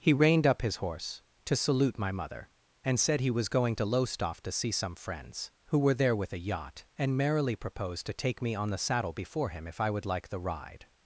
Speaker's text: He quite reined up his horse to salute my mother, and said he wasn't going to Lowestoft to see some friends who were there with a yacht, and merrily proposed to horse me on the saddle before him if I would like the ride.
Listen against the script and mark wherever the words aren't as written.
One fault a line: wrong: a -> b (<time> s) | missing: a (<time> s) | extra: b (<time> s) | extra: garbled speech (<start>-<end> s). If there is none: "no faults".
missing: quite (0.1 s)
wrong: wasn't -> was (3.3 s)
wrong: horse -> take (8.1 s)